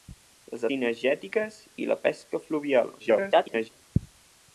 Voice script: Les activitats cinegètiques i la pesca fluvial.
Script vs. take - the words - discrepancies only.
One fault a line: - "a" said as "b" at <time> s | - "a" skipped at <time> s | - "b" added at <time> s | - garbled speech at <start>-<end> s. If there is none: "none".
- "activitats" skipped at 0.6 s
- garbled speech at 3.0-3.7 s